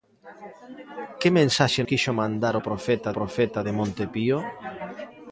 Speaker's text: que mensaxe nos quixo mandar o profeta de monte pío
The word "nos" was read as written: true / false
false